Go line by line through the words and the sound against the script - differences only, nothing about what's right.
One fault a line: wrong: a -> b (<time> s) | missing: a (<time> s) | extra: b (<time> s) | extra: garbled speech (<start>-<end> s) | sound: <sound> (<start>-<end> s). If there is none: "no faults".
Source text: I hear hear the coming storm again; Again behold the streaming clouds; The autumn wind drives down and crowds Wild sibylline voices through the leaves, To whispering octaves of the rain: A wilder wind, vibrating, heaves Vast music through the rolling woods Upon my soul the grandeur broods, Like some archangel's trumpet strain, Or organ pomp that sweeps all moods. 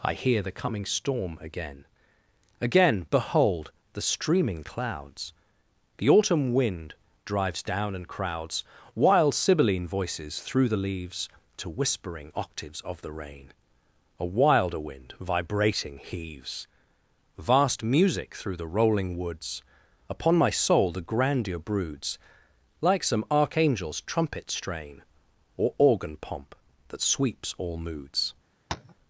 missing: hear (0.4 s)
sound: tap (28.7-28.9 s)